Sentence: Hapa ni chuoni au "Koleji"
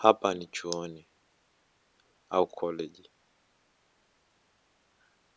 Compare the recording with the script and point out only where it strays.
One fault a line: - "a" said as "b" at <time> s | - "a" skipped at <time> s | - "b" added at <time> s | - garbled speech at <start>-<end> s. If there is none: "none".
none